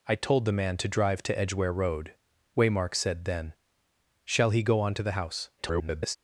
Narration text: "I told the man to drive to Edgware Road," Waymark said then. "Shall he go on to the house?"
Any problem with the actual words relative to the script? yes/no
yes